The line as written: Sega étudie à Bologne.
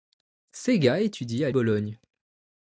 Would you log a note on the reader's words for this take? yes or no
no